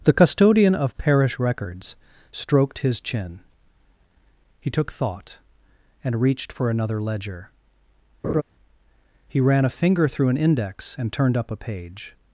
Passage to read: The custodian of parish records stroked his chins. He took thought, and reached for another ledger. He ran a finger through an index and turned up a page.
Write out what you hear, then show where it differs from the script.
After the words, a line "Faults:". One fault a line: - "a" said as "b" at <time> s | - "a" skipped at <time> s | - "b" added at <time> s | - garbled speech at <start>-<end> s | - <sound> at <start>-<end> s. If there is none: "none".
The custodian of parish records stroked his chin. He took thought, and reached for another ledger. He ran a finger through an index and turned up a page.
Faults:
- "chins" said as "chin" at 3.0 s
- laugh at 8.2-8.4 s